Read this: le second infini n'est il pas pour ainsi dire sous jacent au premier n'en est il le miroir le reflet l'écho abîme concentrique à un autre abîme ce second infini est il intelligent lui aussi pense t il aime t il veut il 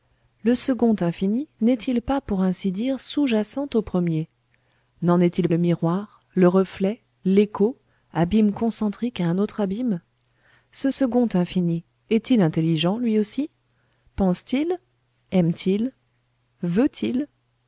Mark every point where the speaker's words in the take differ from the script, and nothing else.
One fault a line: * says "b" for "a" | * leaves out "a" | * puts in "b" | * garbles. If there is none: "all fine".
all fine